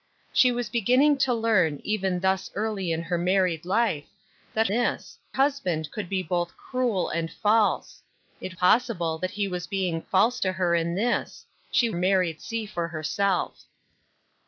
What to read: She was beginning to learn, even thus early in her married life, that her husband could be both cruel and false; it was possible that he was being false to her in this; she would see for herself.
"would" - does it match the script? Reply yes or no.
no